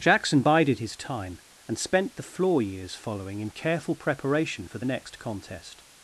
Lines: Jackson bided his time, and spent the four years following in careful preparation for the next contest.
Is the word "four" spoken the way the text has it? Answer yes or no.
no